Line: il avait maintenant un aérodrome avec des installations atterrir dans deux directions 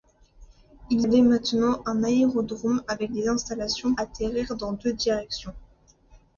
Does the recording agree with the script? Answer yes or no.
yes